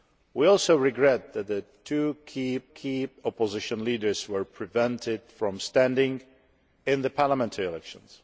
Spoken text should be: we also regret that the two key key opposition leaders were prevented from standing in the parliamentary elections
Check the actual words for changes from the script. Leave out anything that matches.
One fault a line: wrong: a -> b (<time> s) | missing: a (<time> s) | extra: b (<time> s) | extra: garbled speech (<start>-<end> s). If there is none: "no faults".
no faults